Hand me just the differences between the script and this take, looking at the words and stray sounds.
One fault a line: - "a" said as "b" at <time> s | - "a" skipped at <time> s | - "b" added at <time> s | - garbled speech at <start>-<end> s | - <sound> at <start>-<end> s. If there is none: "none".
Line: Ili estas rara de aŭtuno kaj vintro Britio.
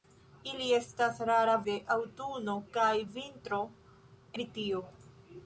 none